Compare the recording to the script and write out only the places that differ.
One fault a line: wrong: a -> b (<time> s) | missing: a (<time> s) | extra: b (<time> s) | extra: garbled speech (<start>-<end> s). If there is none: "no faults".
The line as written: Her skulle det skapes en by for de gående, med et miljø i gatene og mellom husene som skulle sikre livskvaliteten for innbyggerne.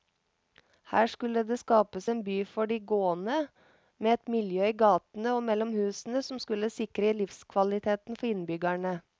no faults